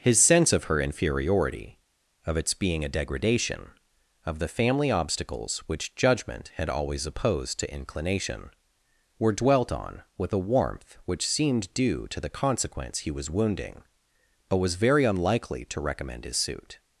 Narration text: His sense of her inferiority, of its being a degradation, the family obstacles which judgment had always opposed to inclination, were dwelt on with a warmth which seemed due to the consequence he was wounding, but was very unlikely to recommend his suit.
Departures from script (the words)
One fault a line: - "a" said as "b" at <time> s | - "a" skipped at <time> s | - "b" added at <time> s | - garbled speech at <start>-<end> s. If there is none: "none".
- "of" added at 4.2 s